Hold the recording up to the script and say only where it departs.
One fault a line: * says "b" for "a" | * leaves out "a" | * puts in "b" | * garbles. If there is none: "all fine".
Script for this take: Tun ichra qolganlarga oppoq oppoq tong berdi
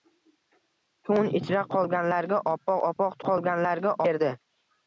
* says "qolganlarga" for "tong"